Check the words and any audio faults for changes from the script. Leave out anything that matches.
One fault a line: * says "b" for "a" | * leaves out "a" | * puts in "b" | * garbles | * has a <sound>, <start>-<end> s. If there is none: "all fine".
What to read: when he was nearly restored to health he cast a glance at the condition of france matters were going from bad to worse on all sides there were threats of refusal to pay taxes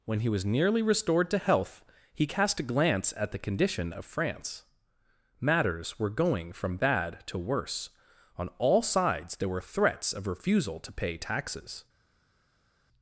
all fine